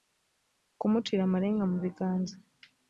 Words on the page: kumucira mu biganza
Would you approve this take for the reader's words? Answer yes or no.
no